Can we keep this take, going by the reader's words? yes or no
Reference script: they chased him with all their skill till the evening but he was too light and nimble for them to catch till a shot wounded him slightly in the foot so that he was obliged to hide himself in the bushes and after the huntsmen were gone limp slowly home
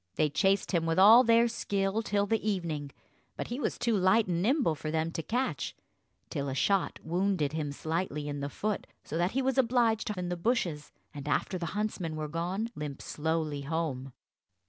no